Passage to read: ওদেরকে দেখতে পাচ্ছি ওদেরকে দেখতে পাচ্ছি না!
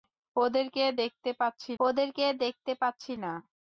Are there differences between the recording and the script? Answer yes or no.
no